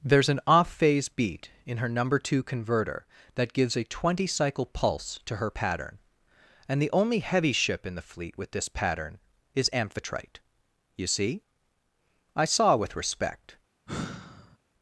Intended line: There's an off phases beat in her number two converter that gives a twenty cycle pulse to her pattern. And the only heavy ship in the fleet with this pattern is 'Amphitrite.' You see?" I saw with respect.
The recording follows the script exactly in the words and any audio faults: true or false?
false